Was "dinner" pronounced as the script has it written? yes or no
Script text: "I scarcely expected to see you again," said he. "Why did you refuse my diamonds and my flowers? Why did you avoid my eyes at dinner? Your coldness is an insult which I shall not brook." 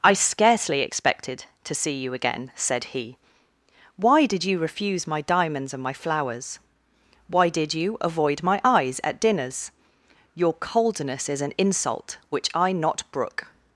no